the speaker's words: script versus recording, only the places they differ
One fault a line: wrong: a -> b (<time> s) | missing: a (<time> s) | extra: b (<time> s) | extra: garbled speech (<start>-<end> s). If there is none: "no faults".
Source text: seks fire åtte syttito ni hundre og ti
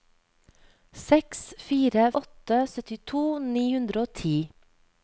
no faults